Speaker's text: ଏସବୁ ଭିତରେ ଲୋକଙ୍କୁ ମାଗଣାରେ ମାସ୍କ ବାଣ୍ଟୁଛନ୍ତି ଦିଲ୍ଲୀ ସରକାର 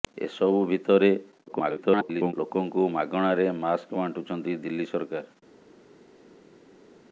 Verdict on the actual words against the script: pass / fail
fail